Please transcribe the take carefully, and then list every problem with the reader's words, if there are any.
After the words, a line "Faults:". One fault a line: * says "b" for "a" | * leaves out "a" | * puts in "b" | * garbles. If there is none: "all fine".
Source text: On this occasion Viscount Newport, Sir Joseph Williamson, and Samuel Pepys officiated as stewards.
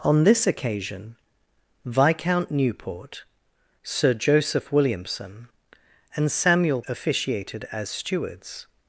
On this occasion Viscount Newport, Sir Joseph Williamson, and Samuel Officiated as stewards.
Faults:
* leaves out "Pepys"